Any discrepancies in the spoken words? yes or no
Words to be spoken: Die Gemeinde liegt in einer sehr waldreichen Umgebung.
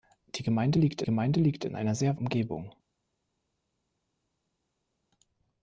yes